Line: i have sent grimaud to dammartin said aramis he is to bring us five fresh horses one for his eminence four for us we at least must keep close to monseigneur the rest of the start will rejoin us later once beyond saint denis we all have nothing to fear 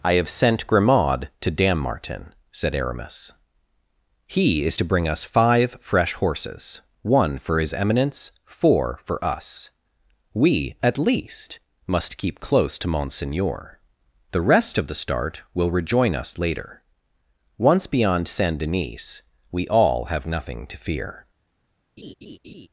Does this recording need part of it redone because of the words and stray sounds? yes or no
yes